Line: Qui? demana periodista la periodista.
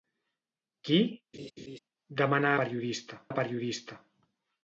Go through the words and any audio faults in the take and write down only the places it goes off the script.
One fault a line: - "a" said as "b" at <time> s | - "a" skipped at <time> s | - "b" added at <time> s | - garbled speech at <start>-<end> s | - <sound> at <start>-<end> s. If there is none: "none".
- laugh at 1.3-1.8 s